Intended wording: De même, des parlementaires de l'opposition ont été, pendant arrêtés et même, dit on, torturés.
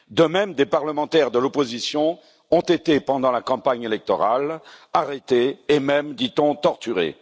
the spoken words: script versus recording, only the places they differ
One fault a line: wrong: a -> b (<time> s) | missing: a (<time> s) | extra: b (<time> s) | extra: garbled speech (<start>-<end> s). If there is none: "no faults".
extra: la campagne électorale (3.3 s)